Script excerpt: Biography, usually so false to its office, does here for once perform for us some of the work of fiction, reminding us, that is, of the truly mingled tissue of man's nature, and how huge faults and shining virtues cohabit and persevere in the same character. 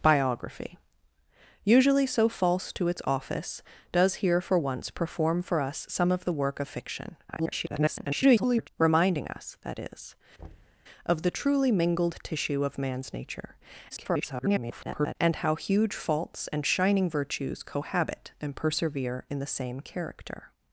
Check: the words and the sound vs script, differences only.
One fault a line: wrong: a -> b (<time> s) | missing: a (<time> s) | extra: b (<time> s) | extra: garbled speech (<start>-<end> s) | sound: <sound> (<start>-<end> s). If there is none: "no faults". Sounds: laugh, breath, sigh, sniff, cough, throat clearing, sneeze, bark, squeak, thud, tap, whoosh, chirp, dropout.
extra: garbled speech (7.3-8.7 s)
sound: thud (10.4-10.8 s)
extra: garbled speech (13.9-15.2 s)